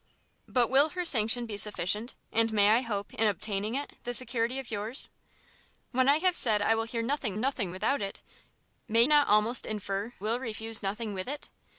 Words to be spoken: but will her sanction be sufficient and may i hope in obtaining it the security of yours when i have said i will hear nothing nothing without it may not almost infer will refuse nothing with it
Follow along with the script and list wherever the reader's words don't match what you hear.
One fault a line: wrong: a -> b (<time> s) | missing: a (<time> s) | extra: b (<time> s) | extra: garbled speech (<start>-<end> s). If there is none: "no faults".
no faults